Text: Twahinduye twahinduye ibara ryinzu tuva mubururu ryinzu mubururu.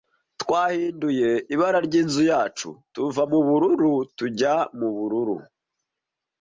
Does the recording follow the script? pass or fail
fail